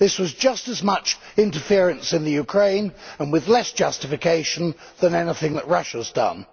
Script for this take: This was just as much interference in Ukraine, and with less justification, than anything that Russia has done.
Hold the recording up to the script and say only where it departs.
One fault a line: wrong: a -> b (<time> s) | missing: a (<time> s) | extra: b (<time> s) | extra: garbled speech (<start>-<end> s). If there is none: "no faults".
no faults